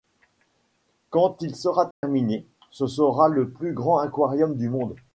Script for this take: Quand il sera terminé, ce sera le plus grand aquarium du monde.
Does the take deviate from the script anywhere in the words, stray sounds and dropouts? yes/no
yes